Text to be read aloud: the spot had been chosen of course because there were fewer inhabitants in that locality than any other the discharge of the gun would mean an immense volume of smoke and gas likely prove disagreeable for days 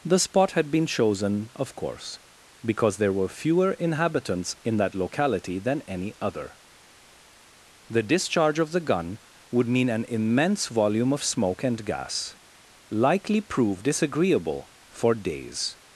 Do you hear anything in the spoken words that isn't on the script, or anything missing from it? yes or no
no